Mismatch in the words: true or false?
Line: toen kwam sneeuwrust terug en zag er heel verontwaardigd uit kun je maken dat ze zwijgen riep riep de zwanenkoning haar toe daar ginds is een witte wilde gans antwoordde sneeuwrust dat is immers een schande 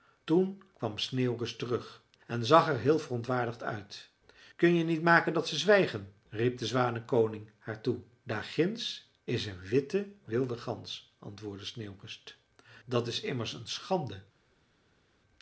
true